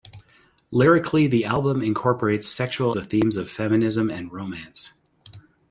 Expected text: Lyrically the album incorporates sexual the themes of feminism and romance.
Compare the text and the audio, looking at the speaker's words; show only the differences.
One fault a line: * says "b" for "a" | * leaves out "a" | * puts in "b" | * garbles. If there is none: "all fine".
all fine